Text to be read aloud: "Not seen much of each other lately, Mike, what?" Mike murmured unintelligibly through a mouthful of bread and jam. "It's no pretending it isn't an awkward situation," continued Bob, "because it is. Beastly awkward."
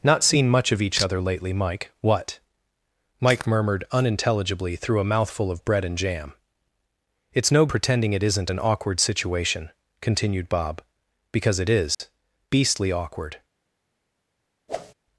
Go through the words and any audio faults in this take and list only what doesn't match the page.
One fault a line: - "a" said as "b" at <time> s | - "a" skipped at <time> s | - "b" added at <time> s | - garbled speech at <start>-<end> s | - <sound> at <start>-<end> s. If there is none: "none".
- dropout at 11.9-12.0 s
- whoosh at 14.7-14.9 s